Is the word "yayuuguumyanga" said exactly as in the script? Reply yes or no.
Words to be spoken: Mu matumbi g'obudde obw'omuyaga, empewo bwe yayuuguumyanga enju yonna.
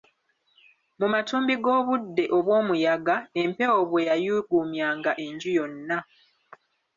yes